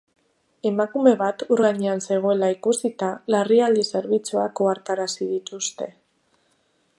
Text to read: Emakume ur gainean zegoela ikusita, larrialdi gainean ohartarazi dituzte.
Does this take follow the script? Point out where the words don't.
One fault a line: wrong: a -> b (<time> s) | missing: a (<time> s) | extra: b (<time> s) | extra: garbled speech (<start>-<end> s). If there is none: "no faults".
extra: bat (1.2 s)
wrong: gainean -> zerbitzuak (3.9 s)